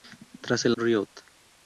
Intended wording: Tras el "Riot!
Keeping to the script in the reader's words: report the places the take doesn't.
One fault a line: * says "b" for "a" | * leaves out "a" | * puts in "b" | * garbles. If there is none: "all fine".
all fine